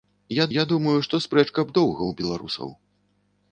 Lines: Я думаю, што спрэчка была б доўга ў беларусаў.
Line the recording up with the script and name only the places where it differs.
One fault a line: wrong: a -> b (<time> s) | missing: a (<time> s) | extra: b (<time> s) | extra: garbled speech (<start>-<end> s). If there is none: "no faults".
extra: я (0.5 s)
missing: была (1.6 s)